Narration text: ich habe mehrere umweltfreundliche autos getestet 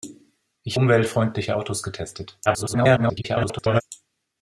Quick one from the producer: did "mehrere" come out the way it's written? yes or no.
no